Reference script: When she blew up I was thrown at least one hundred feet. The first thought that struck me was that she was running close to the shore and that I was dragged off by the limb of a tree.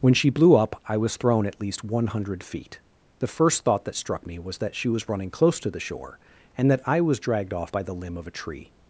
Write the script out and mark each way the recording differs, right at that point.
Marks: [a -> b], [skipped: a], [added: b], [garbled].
When she blew up I was thrown at least one hundred feet. The first thought that struck me was that she was running close to the shore and that I was dragged off by the limb of a tree.